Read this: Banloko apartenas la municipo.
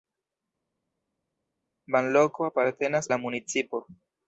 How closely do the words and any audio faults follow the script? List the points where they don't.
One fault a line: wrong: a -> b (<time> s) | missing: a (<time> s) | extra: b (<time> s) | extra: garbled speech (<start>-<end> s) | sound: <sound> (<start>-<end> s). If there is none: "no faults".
no faults